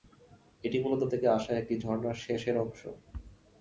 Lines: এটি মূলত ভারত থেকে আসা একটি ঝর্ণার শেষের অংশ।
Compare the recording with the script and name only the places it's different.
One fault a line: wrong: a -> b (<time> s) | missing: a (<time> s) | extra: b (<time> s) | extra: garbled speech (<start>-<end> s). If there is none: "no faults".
missing: ভারত (1.0 s)